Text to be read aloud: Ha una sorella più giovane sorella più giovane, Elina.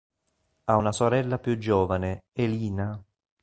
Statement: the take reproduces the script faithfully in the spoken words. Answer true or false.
false